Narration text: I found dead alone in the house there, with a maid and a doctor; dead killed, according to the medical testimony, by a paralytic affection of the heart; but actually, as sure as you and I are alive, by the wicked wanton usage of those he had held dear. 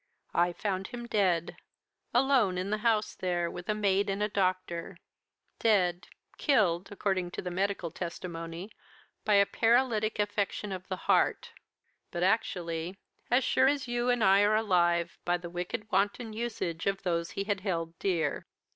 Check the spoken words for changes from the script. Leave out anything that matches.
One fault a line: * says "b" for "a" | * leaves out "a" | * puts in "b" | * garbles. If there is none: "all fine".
* puts in "him"